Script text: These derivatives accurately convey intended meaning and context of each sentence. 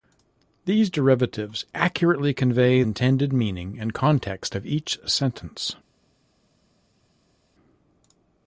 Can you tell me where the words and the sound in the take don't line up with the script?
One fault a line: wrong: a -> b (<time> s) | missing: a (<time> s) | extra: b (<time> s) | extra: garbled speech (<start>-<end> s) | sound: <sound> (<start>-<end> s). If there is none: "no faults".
no faults